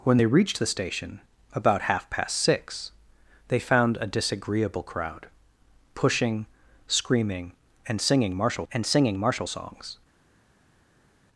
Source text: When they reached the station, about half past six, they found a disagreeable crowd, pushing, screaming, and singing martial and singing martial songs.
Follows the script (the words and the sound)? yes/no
yes